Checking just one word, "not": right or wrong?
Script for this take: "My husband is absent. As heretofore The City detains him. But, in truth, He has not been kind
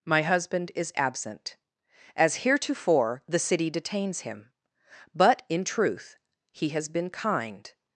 wrong